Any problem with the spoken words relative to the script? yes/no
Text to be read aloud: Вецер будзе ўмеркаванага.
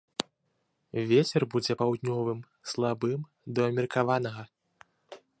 yes